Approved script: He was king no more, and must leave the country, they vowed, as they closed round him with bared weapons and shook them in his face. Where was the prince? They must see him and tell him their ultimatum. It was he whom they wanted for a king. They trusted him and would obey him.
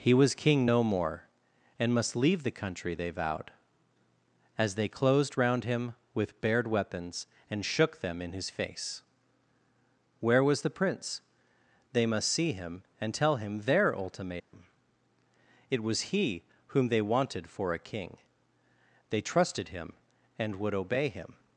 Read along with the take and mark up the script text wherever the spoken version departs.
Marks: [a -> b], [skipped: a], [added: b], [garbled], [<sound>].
He was king no more, and must leave the country, they vowed, as they closed round him with bared weapons and shook them in his face. Where was the prince? They must see him and tell him their ultimatum. [dropout] It was he whom they wanted for a king. They trusted him and would obey him.